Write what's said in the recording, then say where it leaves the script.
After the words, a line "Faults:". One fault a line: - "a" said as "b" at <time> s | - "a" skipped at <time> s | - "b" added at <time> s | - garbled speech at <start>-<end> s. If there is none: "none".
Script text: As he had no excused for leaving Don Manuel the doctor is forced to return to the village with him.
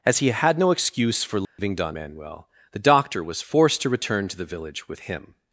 As he had no excuse for leaving Don Manuel the doctor was forced to return to the village with him.
Faults:
- "excused" said as "excuse" at 0.7 s
- "is" said as "was" at 3.2 s